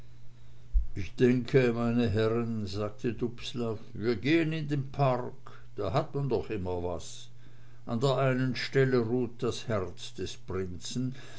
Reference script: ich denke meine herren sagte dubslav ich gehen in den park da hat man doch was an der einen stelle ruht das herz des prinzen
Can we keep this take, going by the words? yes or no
no